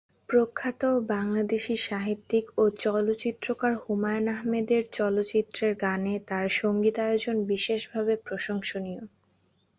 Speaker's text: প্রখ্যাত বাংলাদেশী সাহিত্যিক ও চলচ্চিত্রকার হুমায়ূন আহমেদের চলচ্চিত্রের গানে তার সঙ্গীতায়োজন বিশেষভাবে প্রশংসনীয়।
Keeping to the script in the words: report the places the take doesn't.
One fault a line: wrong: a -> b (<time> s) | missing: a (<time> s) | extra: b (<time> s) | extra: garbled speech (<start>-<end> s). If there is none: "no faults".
no faults